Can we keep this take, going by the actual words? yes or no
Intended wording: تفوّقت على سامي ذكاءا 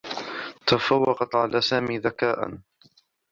yes